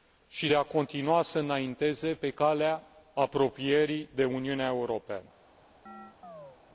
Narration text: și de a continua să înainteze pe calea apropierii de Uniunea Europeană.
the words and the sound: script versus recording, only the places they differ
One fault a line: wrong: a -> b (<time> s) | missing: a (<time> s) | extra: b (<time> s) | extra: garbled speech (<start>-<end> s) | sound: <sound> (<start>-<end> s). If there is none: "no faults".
sound: chirp (5.9-6.6 s)